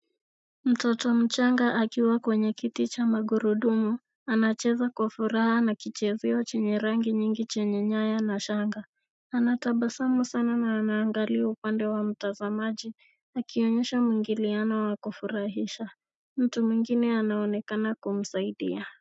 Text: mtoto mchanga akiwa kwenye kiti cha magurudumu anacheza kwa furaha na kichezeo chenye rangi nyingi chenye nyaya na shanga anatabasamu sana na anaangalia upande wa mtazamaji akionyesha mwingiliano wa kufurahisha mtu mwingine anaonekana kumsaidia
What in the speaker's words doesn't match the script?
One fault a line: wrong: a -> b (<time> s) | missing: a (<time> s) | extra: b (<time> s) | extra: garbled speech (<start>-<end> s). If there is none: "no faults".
no faults